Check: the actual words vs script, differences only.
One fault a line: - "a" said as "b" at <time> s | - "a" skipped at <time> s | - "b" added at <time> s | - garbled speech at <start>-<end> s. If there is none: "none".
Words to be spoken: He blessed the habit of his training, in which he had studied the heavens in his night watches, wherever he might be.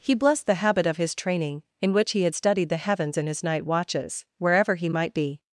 none